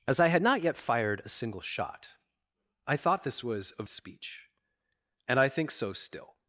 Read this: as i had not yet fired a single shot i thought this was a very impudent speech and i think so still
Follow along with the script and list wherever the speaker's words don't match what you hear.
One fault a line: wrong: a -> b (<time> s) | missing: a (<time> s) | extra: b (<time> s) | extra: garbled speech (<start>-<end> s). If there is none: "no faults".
missing: very impudent (3.8 s)